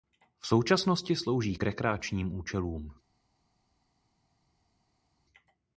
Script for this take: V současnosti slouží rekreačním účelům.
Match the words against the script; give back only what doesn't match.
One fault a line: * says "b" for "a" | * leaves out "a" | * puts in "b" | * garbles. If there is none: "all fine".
* puts in "k"